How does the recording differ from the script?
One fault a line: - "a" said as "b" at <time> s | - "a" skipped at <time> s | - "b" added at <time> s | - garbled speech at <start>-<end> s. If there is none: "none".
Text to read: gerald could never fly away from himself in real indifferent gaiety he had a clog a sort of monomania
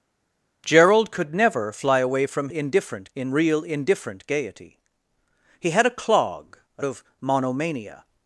- "himself" said as "indifferent" at 2.5 s
- "sort" skipped at 6.8 s